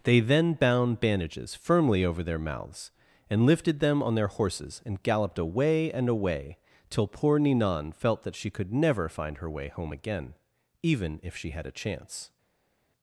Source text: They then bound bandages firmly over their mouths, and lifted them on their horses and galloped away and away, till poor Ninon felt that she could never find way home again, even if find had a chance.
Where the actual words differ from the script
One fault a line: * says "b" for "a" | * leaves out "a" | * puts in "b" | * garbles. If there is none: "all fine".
* puts in "her"
* says "she" for "find"